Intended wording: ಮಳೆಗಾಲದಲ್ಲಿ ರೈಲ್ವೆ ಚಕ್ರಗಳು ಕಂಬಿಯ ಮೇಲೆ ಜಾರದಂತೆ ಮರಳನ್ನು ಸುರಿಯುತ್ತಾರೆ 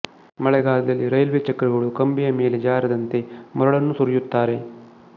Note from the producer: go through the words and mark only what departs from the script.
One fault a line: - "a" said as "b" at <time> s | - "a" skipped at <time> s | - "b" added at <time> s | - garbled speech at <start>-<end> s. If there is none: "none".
none